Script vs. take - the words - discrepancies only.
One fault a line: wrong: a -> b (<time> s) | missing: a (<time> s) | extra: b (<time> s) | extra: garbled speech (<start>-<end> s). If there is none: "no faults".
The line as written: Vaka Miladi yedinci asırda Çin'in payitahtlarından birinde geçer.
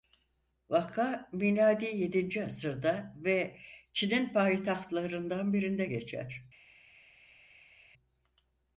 extra: ve (3.2 s)